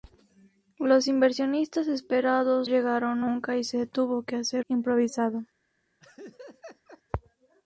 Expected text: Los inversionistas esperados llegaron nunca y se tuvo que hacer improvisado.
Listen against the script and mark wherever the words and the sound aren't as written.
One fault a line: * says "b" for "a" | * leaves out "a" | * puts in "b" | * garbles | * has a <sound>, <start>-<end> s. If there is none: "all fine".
* has a laugh, 6.0-7.0 s